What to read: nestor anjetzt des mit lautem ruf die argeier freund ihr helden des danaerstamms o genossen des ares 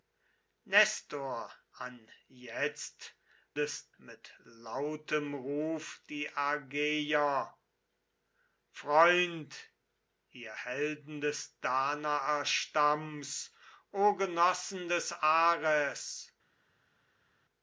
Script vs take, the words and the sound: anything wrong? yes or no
no